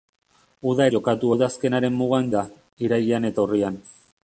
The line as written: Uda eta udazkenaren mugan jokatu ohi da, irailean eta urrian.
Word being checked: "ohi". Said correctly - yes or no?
no